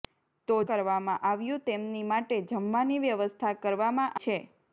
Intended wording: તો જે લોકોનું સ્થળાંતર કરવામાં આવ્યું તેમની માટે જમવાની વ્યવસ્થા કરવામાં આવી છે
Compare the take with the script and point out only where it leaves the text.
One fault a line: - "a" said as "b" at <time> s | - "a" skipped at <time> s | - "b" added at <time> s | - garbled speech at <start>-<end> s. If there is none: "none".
- "જે લોકોનું સ્થળાંતર" skipped at 0.6 s
- "આવી" skipped at 4.2 s